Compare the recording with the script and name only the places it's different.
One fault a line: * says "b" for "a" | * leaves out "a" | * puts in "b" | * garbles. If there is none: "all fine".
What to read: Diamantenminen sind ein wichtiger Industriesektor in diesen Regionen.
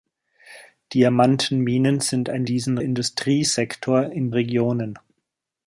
* says "diesen" for "wichtiger"
* leaves out "diesen"